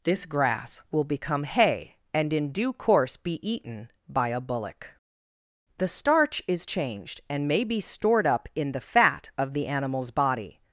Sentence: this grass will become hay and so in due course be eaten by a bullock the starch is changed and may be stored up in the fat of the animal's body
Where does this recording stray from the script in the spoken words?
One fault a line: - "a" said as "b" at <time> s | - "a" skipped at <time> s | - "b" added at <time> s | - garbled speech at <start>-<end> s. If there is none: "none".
- "so" skipped at 2.3 s